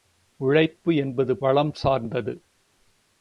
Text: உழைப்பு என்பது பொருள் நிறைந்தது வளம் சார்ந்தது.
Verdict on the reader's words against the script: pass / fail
fail